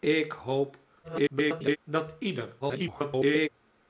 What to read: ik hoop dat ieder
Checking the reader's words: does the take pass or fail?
fail